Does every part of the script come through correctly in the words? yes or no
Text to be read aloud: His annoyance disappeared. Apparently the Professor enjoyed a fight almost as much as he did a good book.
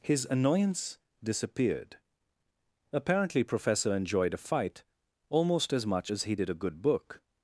no